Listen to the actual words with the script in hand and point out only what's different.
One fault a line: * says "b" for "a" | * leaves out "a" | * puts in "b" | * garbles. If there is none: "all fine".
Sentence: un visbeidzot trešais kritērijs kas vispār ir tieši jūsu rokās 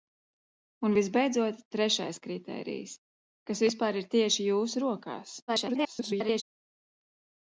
* garbles